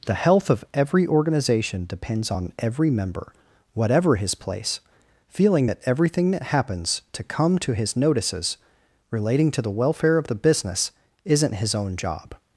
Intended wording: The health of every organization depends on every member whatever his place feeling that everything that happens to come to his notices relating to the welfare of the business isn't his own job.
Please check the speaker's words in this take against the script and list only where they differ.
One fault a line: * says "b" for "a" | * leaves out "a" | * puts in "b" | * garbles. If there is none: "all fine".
all fine